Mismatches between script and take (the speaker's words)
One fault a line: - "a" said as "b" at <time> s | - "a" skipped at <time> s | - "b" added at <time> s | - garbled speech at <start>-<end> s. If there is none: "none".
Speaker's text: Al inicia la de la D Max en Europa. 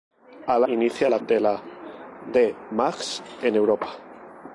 none